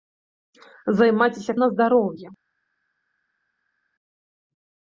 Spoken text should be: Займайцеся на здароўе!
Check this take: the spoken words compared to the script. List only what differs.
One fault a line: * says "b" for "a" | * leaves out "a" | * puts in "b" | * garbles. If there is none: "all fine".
all fine